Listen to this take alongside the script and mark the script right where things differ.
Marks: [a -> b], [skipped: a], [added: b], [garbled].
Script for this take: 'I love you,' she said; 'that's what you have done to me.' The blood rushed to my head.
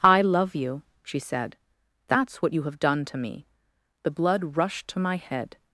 'I love you,' she said; 'that's what you have done to me.' The blood rushed to my head.